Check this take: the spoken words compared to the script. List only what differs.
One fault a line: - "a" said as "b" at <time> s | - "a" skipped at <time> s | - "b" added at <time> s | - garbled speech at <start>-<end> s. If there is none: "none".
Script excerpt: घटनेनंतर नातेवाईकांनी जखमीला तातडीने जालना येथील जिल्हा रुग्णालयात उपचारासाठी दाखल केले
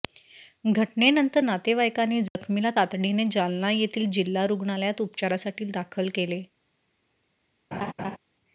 none